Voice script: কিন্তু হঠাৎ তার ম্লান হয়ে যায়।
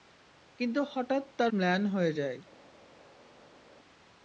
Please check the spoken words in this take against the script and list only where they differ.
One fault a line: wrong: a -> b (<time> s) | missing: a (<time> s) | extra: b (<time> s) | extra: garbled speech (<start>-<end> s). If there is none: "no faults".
no faults